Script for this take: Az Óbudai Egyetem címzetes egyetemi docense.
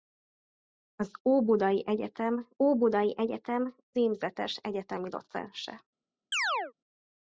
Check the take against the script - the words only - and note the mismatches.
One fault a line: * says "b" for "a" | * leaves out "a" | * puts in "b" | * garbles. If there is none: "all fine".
* puts in "Óbudai Egyetem"